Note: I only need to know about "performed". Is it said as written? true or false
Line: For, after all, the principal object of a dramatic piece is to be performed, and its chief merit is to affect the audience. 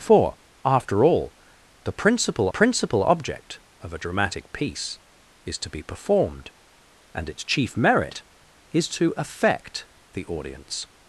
true